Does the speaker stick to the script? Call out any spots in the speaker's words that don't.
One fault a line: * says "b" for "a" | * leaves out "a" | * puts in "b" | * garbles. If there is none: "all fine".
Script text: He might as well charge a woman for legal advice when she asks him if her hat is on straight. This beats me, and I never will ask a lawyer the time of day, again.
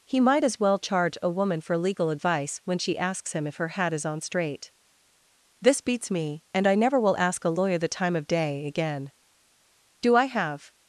* puts in "Do I have"